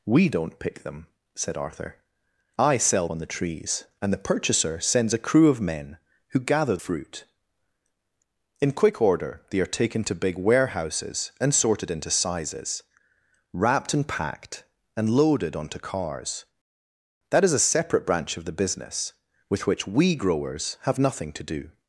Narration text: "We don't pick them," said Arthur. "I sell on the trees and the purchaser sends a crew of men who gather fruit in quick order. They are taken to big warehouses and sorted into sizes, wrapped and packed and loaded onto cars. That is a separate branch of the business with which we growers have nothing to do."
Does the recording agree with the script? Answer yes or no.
yes